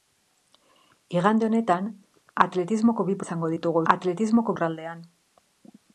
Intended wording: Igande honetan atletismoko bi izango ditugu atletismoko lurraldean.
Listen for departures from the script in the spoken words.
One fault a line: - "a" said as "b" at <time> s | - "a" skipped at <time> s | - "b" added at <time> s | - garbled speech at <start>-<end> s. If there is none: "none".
none